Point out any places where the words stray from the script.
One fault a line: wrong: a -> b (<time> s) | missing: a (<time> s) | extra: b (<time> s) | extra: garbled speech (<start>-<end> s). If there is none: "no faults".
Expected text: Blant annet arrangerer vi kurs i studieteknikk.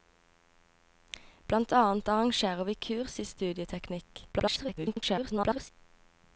extra: garbled speech (4.3-5.7 s)